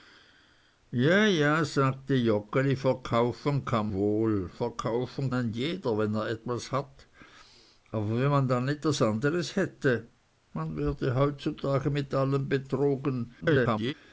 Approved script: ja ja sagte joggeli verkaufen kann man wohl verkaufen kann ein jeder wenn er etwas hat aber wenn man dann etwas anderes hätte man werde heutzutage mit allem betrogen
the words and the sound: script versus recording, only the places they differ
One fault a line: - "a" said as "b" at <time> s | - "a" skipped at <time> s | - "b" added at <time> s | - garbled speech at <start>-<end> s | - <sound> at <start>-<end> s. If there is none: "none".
- "man" skipped at 3.9 s
- "kann" skipped at 5.3 s
- garbled speech at 13.4-13.9 s